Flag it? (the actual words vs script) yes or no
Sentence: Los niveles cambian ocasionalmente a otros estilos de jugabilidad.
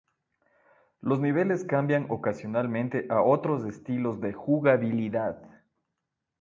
no